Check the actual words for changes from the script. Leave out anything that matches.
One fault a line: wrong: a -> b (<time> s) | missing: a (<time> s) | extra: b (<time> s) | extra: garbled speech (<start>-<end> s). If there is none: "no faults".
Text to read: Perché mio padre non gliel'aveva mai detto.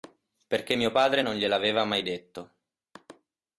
no faults